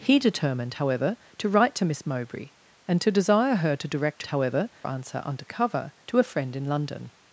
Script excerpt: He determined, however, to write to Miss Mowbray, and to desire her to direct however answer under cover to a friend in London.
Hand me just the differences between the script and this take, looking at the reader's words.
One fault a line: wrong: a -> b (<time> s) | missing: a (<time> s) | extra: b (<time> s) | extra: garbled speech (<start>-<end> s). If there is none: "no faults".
no faults